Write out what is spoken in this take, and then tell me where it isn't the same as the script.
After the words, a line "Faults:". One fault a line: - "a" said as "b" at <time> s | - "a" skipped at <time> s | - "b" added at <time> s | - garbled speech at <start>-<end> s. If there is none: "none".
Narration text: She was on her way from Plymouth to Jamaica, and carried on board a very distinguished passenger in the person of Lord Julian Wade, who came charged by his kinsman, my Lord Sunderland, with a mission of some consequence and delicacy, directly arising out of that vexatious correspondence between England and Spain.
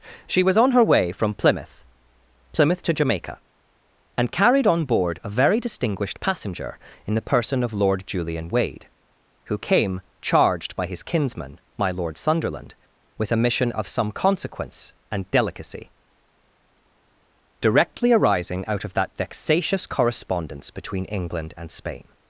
She was on her way from Plymouth Plymouth to Jamaica, and carried on board a very distinguished passenger in the person of Lord Julian Wade, who came charged by his kinsman, my Lord Sunderland, with a mission of some consequence and delicacy, directly arising out of that vexatious correspondence between England and Spain.
Faults:
- "Plymouth" added at 2.5 s